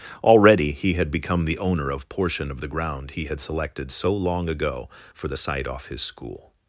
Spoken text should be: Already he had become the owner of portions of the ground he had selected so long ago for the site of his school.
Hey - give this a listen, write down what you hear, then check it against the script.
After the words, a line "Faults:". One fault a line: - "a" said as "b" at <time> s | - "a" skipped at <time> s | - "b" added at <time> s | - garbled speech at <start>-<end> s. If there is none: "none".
Already he had become the owner of portion of the ground he had selected so long ago for the site off his school.
Faults:
- "portions" said as "portion" at 2.1 s
- "of" said as "off" at 5.7 s